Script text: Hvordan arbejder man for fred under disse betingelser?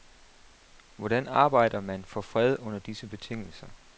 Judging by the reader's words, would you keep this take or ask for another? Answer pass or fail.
pass